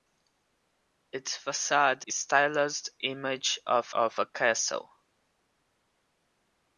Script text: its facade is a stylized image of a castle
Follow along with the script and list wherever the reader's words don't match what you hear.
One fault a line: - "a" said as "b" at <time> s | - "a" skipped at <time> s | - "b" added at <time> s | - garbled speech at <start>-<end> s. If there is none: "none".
- "is a" skipped at 2.0 s
- "of" added at 3.9 s